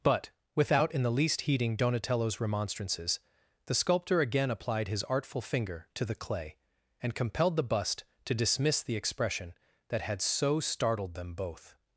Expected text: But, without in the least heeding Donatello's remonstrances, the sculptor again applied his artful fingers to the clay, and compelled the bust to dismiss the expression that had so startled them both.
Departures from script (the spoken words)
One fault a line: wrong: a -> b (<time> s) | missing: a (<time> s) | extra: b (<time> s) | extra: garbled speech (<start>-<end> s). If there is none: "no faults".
wrong: fingers -> finger (5.4 s)